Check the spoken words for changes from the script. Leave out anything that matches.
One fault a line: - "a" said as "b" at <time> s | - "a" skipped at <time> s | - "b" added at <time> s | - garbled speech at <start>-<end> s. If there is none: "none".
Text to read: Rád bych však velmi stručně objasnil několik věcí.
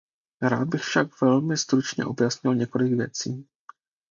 none